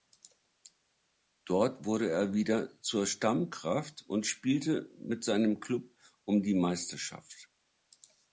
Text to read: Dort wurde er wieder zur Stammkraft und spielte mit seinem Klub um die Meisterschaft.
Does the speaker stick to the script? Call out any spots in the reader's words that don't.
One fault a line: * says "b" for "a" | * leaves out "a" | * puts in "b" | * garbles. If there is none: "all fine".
all fine